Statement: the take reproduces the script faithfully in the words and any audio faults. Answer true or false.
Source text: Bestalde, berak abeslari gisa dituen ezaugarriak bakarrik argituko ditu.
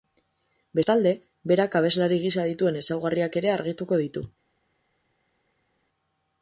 false